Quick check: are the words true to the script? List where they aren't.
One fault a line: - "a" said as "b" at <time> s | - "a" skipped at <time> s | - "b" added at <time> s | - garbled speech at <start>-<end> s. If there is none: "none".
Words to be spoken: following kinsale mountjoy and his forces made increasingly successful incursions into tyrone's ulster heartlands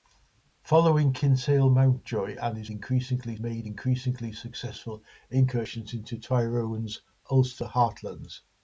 - "forces" said as "increasingly" at 2.7 s